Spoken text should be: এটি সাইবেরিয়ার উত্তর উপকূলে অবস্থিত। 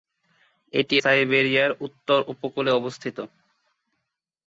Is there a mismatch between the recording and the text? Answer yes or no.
no